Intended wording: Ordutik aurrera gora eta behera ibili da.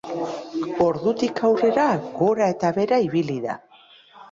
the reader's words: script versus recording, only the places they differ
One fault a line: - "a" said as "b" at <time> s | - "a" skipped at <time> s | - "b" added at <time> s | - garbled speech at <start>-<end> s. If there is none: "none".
none